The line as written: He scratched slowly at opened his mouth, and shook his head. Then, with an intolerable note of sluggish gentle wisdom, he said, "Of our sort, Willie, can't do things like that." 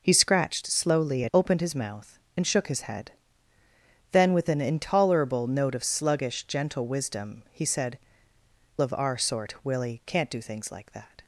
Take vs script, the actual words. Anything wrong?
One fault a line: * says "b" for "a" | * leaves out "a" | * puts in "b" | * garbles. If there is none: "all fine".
all fine